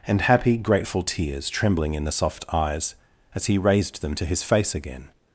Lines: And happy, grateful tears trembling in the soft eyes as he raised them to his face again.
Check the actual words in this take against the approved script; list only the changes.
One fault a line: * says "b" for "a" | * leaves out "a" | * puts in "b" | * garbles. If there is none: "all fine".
all fine